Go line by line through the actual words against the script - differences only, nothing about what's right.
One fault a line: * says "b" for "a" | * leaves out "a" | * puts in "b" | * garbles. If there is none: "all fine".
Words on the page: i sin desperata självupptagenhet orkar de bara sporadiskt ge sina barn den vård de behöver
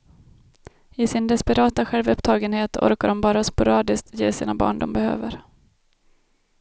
* leaves out "den vård"